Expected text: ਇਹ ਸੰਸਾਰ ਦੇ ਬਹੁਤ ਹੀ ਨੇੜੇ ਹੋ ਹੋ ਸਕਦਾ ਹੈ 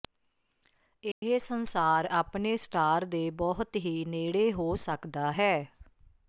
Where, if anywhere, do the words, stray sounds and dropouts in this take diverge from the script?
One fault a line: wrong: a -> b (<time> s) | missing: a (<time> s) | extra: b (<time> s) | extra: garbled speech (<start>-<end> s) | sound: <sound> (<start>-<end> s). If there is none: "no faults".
sound: dropout (1.1-1.2 s)
extra: ਆਪਣੇ ਸਟਾਰ (2.1 s)
missing: ਹੋ (4.7 s)